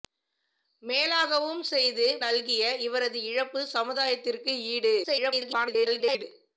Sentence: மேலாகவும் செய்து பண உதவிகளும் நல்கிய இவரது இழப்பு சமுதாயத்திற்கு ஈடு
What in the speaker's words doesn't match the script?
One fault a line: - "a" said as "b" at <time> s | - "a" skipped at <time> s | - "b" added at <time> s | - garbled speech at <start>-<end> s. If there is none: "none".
- "பண உதவிகளும்" skipped at 2.1 s
- garbled speech at 5.0-6.2 s